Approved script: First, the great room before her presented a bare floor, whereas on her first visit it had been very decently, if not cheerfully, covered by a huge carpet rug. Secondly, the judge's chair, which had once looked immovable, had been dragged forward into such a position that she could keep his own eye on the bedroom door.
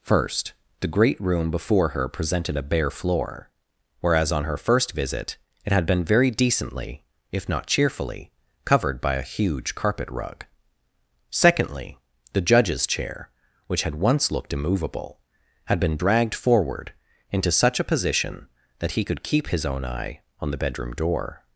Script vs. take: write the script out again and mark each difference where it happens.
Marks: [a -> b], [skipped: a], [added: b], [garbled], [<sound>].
First, the great room before her presented a bare floor, whereas on her first visit it had been very decently, if not cheerfully, covered by a huge carpet rug. Secondly, the judge's chair, which had once looked immovable, had been dragged forward into such a position that [she -> he] could keep his own eye on the bedroom door.